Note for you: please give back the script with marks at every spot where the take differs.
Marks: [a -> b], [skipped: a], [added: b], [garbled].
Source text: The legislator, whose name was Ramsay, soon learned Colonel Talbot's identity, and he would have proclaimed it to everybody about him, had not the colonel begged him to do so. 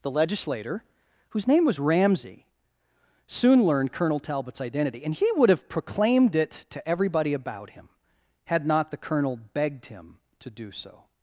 The legislator, whose name was Ramsay, soon learned Colonel Talbot's identity, and he would have proclaimed it to everybody about him, had not the colonel begged him to do so.